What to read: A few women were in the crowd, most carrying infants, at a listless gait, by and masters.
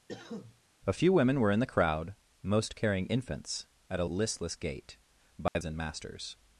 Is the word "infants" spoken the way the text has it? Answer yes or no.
yes